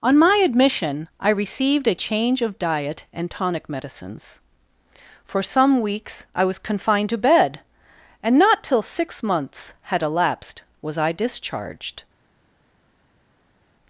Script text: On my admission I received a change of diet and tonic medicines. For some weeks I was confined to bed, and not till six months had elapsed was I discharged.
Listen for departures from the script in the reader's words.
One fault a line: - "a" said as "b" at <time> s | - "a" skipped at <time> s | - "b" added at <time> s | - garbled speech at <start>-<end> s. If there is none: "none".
none